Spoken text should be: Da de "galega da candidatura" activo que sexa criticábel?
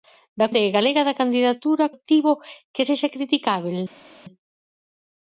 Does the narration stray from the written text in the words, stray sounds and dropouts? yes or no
no